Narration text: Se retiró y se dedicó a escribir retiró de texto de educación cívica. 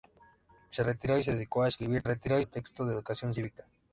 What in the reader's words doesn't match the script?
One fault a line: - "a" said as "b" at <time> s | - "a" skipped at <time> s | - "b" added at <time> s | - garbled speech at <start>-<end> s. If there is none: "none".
none